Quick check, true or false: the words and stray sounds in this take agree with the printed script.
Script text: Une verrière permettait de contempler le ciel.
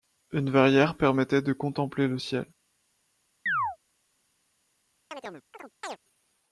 false